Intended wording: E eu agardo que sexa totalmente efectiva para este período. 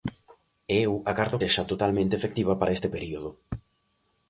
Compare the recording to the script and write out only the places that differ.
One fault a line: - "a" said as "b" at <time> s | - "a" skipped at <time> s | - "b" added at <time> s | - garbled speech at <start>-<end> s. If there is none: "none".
- "que" skipped at 1.4 s